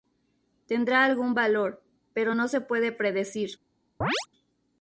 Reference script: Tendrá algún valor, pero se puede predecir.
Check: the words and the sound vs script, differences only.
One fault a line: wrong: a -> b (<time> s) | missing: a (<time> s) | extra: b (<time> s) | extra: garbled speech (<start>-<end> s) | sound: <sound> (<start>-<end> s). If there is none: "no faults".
extra: no (2.3 s)
sound: chirp (4.0-4.3 s)